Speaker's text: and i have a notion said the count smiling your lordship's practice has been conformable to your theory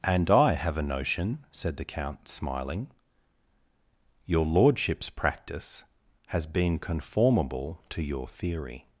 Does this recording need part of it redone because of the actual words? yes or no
no